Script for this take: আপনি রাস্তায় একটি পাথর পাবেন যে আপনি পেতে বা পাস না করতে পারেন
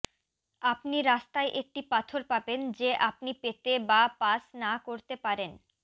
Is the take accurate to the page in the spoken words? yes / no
yes